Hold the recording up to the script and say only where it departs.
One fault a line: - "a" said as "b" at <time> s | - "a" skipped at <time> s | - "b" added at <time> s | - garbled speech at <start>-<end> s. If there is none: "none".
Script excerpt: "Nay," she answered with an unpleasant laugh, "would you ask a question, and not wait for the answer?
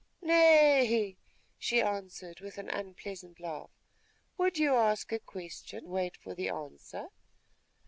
- "and not" skipped at 5.9 s